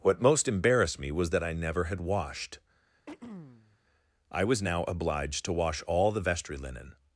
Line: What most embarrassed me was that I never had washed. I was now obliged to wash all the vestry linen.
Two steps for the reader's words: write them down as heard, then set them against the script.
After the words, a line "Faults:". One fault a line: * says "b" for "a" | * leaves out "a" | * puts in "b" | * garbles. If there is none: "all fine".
What most embarrassed me was that I never had washed. I was now obliged to wash all the vestry linen.
Faults:
all fine